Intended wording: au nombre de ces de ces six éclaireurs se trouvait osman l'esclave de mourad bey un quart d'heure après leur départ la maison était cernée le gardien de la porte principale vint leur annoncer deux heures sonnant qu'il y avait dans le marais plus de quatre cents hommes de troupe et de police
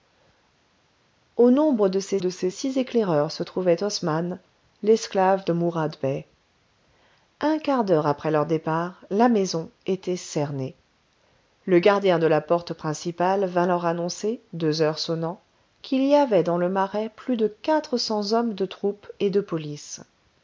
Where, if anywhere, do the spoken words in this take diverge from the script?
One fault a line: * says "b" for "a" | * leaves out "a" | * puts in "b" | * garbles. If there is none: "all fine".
all fine